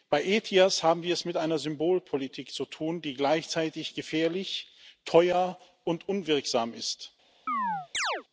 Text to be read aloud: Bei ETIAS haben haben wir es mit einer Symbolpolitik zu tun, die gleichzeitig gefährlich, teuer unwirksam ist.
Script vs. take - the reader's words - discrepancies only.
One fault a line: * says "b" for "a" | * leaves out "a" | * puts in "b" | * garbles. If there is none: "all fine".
* leaves out "haben"
* puts in "und"